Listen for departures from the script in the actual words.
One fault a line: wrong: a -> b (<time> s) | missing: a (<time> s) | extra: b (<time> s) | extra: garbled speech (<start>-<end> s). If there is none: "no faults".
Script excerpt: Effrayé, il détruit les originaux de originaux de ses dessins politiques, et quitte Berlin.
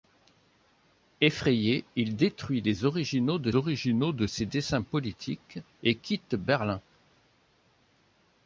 no faults